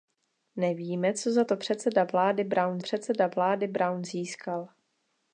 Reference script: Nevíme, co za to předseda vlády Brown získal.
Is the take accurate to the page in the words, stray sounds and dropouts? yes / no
no